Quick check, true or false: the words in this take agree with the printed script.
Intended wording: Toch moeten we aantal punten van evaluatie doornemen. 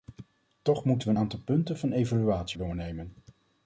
true